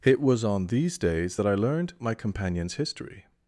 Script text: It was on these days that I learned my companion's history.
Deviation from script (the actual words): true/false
false